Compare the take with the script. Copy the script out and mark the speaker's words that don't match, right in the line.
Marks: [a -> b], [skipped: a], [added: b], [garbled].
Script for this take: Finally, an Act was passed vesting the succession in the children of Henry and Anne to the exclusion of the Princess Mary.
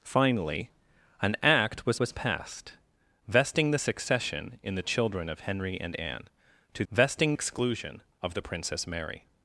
Finally, an Act was [added: was] passed vesting the succession in the children of Henry and Anne to [the -> vesting] exclusion of the Princess Mary.